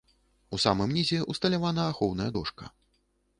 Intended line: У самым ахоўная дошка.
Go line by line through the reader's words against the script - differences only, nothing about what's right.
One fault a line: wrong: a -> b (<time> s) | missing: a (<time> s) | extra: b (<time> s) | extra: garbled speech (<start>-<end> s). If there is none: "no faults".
extra: нізе ўсталявана (1.0 s)